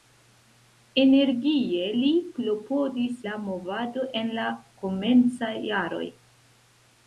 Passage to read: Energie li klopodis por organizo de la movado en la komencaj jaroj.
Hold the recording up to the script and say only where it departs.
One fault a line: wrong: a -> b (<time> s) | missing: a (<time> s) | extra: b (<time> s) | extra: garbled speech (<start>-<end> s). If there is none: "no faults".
missing: por organizo de (3.2 s)